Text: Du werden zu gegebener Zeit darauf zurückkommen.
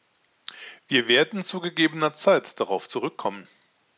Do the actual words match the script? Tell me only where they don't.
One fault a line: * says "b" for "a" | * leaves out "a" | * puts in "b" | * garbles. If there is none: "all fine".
* says "Wir" for "Du"